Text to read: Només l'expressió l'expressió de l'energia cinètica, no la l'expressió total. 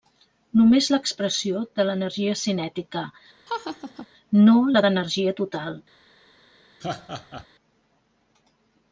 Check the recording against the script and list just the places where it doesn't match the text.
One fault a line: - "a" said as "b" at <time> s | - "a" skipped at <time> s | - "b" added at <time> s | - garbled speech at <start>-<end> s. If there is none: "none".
- "l'expressió" skipped at 1.6 s
- "l'expressió" said as "d'energia" at 4.9 s